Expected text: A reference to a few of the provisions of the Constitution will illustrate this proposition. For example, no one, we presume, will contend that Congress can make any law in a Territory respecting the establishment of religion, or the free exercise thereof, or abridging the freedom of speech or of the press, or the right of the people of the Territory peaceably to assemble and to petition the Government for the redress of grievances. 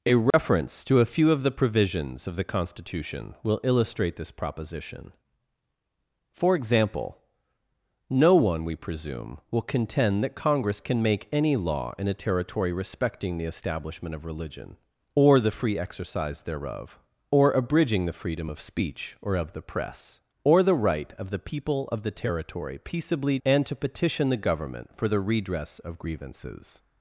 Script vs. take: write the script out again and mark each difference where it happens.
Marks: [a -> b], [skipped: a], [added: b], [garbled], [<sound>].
A reference [dropout] to a few of the provisions of the Constitution will illustrate this proposition. For example, no one, we presume, will contend that Congress can make any law in a Territory respecting the establishment of religion, or the free exercise thereof, or abridging the freedom of speech or of the press, or the right of the people of the Territory peaceably [skipped: to assemble] and to petition the Government for the redress of grievances.